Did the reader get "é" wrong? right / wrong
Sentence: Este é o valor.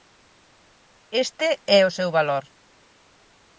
right